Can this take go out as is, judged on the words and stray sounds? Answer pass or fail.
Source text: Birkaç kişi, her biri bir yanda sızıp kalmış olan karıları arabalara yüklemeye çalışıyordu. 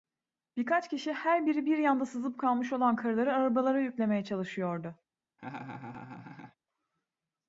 fail